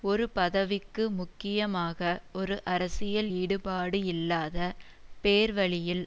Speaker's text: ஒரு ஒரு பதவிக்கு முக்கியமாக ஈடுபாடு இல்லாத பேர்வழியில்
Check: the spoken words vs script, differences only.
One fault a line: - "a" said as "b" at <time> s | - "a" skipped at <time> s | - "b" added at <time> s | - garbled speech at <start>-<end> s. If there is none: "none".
- "ஒரு" skipped at 0.2 s
- "ஒரு அரசியல்" added at 2.3 s